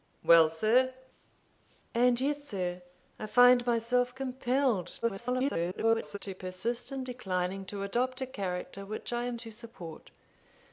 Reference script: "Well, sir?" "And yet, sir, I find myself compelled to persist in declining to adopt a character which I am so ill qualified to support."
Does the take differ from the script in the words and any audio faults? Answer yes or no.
yes